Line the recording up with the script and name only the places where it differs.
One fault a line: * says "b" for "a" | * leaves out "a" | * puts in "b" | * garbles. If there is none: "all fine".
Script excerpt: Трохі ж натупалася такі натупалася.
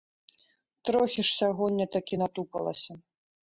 * says "сягоння" for "натупалася"